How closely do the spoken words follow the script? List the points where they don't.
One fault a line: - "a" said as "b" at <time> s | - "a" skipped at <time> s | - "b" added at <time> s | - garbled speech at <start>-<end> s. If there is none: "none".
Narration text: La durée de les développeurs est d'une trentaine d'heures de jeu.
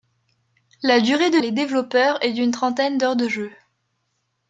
none